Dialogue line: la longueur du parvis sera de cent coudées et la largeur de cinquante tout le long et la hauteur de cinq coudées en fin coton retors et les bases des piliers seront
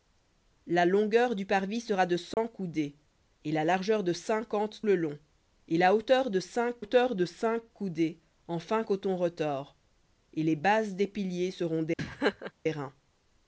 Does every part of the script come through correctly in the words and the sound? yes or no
no